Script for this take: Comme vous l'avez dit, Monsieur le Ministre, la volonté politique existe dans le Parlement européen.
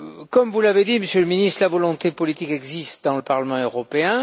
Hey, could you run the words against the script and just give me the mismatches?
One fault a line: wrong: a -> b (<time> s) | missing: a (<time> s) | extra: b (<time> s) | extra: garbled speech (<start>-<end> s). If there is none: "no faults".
no faults